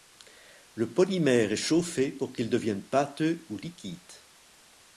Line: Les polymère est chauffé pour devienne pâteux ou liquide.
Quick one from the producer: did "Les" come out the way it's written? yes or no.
no